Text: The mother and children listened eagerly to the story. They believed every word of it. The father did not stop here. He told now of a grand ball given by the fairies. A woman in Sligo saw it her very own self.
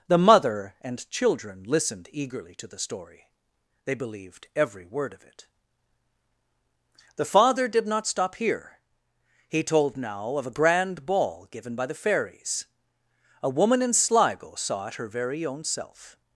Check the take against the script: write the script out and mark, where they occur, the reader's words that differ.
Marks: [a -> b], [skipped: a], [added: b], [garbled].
The mother and children listened eagerly to the story. They believed every word of it. The father did not stop here. He told now of a grand ball given by the fairies. A woman in Sligo saw it her very own self.